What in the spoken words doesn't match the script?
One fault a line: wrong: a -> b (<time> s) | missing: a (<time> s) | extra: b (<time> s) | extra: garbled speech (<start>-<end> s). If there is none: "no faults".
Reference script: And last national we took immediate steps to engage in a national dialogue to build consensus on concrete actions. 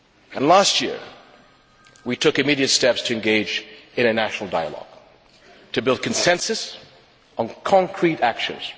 wrong: national -> year (0.8 s)